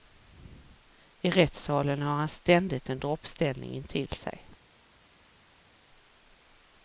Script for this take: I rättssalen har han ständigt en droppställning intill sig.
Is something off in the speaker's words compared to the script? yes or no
no